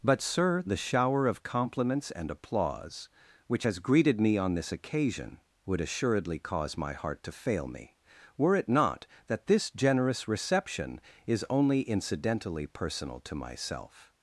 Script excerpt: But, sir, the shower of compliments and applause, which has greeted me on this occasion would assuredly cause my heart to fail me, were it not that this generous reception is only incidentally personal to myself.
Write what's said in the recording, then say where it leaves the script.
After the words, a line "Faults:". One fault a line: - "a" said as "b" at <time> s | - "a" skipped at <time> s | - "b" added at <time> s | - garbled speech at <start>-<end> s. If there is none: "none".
But, sir, the shower of compliments and applause, which has greeted me on this occasion would assuredly cause my heart to fail me, were it not that this generous reception is only incidentally personal to myself.
Faults:
none